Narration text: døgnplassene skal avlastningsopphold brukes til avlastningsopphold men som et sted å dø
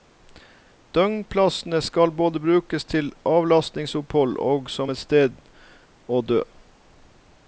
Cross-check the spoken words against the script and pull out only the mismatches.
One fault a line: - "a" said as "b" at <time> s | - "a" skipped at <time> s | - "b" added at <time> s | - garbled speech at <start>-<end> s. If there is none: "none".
- "avlastningsopphold" said as "både" at 2.1 s
- "men" said as "og" at 4.4 s